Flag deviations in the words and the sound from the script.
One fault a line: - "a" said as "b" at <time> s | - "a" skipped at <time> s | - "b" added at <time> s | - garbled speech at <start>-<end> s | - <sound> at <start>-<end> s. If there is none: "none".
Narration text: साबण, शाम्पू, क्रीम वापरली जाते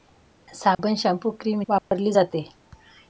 - dropout at 0.7-0.8 s
- dropout at 1.8-1.9 s